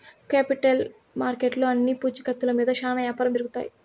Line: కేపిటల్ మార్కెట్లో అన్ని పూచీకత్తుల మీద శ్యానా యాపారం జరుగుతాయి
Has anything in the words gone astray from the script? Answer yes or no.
no